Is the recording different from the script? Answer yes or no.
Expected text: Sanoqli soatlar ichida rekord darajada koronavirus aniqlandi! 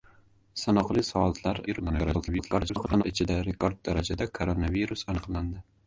yes